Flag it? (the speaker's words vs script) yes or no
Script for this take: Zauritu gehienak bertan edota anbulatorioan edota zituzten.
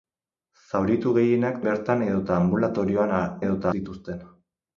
no